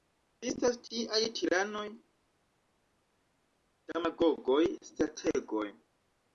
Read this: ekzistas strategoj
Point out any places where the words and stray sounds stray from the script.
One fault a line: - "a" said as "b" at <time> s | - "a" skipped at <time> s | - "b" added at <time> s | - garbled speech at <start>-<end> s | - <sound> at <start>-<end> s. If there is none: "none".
- "tiaj tiranoj demagogoj" added at 0.8 s